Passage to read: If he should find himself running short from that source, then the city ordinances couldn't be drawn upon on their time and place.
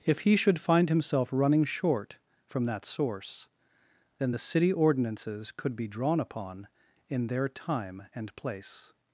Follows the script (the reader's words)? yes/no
no